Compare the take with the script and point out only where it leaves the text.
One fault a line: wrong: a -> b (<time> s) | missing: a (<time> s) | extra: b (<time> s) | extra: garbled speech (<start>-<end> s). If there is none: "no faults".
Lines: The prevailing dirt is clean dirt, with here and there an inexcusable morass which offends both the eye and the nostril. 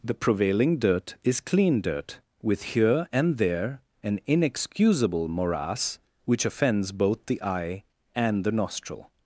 no faults